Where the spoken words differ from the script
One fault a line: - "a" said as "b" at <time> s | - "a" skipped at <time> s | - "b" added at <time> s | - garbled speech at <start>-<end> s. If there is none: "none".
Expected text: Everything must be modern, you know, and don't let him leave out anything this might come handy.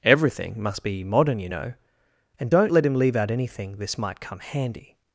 none